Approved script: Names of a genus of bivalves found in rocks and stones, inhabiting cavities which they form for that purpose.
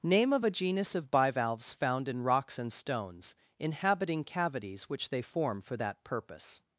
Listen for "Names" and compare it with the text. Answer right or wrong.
wrong